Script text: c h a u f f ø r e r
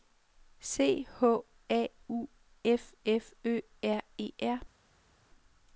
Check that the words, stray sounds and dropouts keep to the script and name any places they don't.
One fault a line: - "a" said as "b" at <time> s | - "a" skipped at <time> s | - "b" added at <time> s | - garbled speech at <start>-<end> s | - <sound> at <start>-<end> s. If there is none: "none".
none